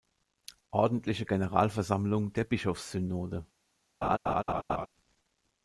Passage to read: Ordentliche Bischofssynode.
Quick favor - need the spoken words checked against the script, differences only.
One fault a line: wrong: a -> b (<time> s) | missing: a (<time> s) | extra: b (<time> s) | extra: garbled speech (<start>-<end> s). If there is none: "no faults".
extra: Generalversammlung der (1.2 s)